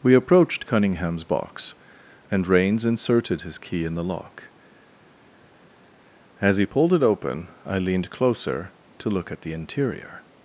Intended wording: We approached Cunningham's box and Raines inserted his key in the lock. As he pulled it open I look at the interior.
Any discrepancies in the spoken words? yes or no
yes